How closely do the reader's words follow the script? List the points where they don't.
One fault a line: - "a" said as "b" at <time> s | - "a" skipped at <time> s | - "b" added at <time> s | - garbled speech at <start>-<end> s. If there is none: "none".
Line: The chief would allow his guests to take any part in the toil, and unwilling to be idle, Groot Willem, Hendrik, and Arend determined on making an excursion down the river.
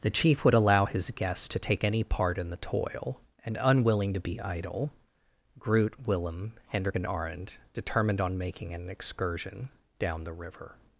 none